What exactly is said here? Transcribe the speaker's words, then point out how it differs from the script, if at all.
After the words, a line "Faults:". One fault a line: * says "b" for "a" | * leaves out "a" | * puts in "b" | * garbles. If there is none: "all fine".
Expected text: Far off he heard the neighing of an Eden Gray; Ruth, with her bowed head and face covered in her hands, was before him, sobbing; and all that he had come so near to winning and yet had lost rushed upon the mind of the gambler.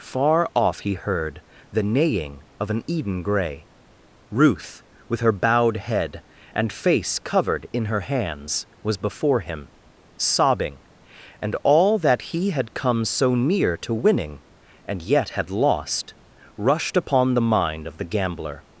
Far off he heard the neighing of an Eden Gray; Ruth, with her bowed head and face covered in her hands, was before him, sobbing; and all that he had come so near to winning and yet had lost rushed upon the mind of the gambler.
Faults:
all fine